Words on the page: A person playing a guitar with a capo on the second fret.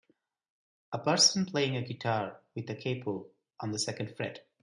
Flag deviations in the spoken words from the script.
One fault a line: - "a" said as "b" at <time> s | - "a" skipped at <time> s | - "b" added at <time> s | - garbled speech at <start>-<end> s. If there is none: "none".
none